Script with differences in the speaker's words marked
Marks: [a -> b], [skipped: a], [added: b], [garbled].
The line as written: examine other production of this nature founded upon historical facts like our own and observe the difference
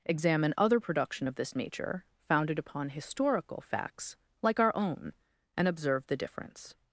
examine other production of this nature founded upon historical facts like our own and observe the difference